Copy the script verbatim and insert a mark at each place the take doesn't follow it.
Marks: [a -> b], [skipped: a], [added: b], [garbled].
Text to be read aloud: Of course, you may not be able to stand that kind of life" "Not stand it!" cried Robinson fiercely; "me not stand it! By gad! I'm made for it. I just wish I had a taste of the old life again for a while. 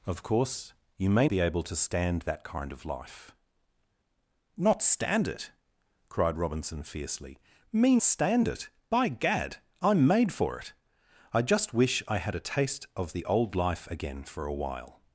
Of course, you may [skipped: not] be able to stand that kind of life" "Not stand it!" cried Robinson fiercely; "me [skipped: not] stand it! By gad! I'm made for it. I just wish I had a taste of the old life again for a while.